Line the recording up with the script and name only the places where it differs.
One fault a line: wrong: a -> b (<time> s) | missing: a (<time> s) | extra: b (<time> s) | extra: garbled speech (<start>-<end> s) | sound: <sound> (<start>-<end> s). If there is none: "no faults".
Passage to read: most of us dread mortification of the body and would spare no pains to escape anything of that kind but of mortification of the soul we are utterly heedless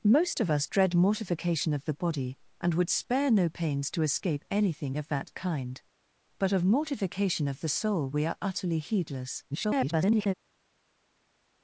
extra: garbled speech (9.5-10.3 s)